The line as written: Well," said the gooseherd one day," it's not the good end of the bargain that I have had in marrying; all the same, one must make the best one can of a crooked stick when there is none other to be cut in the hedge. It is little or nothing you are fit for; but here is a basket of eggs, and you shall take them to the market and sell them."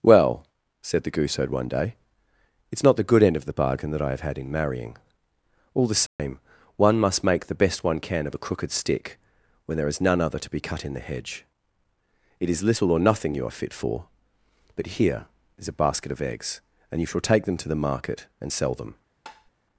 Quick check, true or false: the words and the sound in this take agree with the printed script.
false